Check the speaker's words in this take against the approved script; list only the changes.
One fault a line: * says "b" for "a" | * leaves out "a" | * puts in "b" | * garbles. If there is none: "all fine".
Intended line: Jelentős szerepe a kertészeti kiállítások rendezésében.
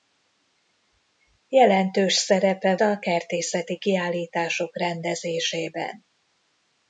all fine